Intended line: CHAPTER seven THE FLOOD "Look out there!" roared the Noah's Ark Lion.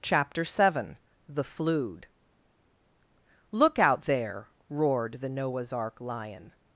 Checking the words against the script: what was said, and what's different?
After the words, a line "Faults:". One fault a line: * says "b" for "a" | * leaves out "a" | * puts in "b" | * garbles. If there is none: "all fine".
CHAPTER seven THE FLOOD "Look out there!" roared the Noah's Ark Lion.
Faults:
all fine